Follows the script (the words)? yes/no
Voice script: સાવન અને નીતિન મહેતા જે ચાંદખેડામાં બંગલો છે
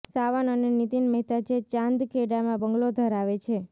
no